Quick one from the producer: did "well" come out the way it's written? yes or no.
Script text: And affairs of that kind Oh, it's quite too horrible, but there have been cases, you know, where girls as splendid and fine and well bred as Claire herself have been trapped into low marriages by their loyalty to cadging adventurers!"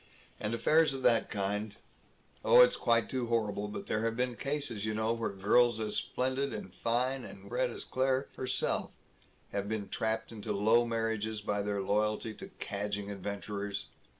no